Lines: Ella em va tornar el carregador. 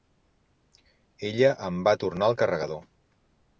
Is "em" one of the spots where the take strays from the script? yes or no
no